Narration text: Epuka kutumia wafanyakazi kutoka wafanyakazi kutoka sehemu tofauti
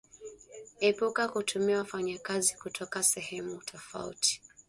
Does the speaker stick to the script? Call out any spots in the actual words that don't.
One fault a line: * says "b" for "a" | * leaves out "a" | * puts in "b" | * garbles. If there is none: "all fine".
* leaves out "wafanyakazi kutoka"